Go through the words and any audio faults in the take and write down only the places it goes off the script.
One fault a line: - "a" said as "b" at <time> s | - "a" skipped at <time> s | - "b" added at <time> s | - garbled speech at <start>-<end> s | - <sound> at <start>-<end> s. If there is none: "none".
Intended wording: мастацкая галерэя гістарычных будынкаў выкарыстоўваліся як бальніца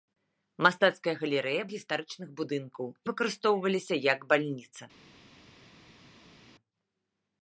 none